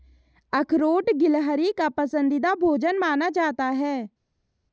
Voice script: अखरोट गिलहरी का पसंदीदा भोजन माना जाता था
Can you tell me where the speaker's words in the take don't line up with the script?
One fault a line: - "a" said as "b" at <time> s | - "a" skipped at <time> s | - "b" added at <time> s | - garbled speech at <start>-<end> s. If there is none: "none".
- "था" said as "है" at 3.7 s